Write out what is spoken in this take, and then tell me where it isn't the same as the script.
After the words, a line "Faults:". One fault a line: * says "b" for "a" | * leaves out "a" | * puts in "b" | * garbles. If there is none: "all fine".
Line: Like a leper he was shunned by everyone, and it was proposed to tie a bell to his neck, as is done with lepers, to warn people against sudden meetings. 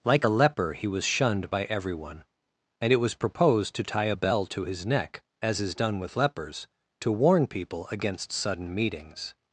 Like a leper he was shunned by everyone, and it was proposed to tie a bell to his neck, as is done with lepers, to warn people against sudden meetings.
Faults:
all fine